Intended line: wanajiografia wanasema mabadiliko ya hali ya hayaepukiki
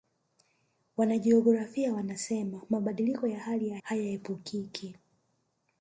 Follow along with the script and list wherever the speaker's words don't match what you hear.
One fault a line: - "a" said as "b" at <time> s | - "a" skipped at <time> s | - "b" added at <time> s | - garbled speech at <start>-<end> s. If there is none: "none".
none